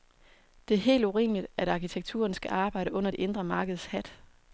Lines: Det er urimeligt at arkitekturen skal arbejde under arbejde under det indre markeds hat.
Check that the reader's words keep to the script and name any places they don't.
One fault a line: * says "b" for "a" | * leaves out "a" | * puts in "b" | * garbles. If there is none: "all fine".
* puts in "helt"
* leaves out "arbejde under"